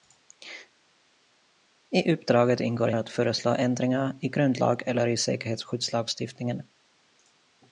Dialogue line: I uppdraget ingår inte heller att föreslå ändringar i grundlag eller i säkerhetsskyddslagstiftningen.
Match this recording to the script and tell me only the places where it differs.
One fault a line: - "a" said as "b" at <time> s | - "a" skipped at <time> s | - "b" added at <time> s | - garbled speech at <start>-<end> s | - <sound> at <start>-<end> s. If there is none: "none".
- "inte heller" skipped at 2.9 s